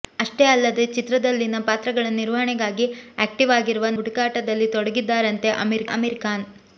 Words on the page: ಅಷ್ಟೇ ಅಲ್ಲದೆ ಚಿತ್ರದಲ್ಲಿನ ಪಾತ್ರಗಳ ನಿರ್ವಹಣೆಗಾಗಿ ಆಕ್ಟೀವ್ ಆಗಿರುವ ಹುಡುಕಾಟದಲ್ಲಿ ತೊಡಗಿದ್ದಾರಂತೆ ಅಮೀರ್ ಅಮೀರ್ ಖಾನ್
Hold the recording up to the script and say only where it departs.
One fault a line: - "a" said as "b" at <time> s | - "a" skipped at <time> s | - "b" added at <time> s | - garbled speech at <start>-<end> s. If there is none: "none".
none